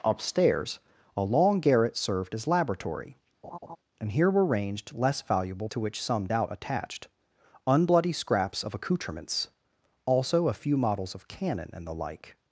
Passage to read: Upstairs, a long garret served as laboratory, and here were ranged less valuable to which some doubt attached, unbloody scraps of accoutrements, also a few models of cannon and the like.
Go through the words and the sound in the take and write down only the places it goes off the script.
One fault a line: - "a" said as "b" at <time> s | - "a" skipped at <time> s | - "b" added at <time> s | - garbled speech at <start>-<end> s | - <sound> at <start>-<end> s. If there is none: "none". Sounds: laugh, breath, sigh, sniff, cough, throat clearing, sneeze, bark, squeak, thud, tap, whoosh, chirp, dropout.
- laugh at 3.4-3.8 s